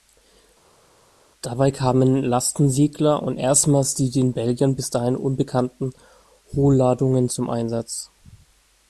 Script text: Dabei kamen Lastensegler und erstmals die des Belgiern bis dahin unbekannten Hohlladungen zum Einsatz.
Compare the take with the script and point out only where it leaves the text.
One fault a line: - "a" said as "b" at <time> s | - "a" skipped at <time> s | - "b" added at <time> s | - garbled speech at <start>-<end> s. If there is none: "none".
- "des" said as "den" at 4.1 s